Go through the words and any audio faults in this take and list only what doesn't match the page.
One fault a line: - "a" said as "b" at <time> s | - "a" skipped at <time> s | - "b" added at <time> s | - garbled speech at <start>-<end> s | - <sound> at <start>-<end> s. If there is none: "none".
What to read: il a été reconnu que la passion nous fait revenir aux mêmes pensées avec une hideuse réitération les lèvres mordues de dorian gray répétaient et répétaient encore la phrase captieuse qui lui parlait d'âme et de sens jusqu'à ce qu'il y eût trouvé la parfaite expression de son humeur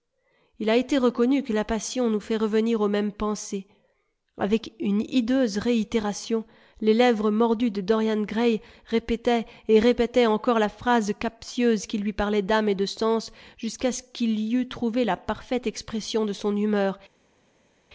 none